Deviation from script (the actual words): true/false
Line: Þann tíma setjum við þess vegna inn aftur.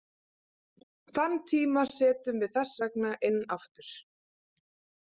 false